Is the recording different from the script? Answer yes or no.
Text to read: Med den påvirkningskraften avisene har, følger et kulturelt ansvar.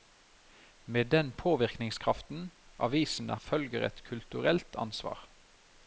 yes